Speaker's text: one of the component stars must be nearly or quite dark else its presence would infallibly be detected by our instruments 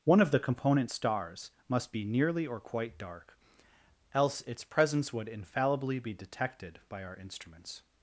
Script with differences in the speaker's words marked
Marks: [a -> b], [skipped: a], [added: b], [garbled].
one of the component stars must be nearly or quite dark else its presence would infallibly be detected by our instruments